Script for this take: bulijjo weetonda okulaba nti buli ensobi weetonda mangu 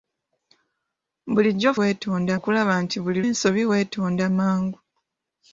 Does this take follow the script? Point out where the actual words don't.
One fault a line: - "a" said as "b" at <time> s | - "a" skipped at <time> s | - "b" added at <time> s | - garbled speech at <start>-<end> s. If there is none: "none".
none